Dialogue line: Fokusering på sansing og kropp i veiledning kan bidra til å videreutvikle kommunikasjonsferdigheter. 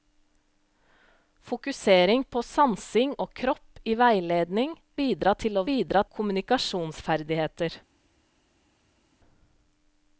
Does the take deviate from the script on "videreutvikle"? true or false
true